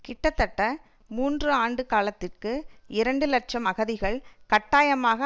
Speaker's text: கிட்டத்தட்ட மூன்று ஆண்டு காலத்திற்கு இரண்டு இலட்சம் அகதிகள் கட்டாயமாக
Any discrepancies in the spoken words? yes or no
no